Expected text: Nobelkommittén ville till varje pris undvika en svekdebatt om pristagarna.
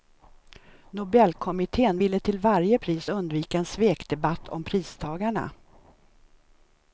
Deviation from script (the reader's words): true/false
false